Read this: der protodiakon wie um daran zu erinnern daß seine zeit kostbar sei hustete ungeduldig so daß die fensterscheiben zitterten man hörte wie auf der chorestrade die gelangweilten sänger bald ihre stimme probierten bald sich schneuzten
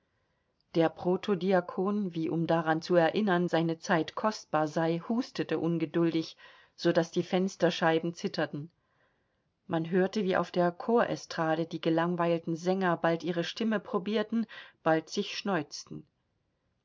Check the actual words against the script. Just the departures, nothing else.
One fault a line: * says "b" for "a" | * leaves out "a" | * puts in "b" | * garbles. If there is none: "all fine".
* leaves out "daß"